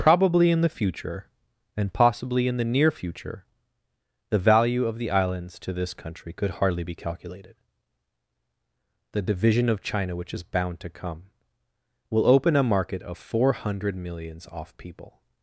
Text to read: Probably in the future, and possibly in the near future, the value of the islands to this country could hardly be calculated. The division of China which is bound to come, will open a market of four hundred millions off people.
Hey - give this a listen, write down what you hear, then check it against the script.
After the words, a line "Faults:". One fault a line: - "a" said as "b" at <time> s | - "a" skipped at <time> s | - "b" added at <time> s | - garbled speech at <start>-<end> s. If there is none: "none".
Probably in the future, and possibly in the near future, the value of the islands to this country could hardly be calculated. The division of China which is bound to come, will open a market of four hundred millions off people.
Faults:
none